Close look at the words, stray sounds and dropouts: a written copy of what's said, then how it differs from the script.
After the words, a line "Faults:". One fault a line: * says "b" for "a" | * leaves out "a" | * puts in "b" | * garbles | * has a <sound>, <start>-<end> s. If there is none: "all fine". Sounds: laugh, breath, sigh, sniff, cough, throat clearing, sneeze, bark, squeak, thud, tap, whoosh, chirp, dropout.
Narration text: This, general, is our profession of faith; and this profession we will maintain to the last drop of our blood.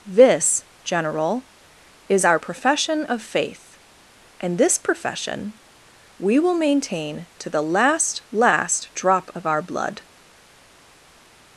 This, general, is our profession of faith; and this profession we will maintain to the last last drop of our blood.
Faults:
* puts in "last"